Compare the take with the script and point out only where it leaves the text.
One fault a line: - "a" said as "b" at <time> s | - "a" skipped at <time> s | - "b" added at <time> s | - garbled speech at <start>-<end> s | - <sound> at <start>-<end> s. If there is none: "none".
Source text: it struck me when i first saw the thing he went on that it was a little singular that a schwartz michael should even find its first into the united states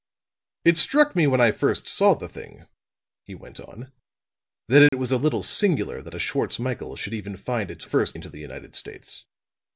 - dropout at 4.9-4.9 s